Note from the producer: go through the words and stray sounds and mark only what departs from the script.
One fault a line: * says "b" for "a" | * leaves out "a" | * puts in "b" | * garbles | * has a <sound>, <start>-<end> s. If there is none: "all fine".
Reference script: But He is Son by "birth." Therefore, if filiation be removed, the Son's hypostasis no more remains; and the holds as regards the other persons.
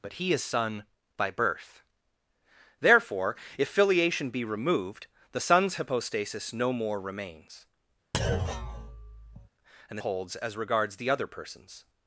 * has a thud, 8.1-9.5 s